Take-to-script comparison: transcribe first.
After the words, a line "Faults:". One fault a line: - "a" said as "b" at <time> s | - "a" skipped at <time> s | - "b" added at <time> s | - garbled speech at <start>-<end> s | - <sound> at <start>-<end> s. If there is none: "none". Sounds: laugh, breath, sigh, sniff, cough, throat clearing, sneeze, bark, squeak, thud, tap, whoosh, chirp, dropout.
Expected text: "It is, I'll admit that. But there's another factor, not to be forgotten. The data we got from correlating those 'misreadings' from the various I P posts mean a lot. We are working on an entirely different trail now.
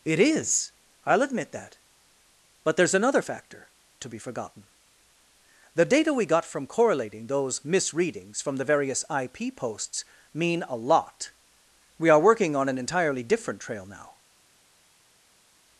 "It is, I'll admit that. But there's another factor, to be forgotten. The data we got from correlating those 'misreadings' from the various I P posts mean a lot. We are working on an entirely different trail now.
Faults:
- "not" skipped at 3.7 s